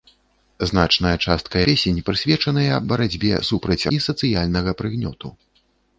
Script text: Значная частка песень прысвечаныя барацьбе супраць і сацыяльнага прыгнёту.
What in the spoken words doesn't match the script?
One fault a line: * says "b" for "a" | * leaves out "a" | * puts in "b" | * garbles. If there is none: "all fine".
all fine